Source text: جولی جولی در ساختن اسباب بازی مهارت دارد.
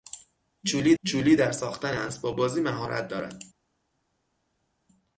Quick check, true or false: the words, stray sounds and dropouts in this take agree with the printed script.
true